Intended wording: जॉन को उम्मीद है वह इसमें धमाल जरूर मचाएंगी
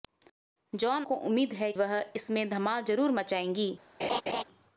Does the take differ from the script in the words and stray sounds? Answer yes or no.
yes